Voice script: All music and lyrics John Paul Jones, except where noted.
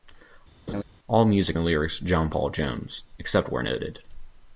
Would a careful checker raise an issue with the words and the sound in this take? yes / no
yes